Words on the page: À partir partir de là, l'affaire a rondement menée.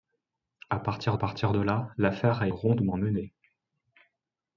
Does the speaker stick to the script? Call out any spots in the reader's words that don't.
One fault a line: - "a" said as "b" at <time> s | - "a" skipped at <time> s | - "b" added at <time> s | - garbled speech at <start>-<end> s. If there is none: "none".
none